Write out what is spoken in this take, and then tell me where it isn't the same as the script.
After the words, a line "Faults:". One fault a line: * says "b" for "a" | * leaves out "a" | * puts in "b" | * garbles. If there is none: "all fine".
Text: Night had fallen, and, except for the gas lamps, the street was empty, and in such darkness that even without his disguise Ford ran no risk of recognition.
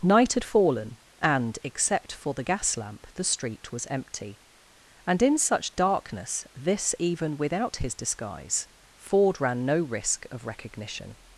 Night had fallen, and, except for the gas lamp, the street was empty, and in such darkness this even without his disguise Ford ran no risk of recognition.
Faults:
* says "lamp" for "lamps"
* says "this" for "that"